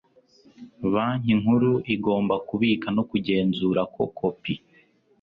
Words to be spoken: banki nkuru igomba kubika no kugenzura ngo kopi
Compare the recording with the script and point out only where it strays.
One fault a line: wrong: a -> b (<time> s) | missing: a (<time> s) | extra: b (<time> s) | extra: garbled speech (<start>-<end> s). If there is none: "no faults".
wrong: ngo -> ko (3.9 s)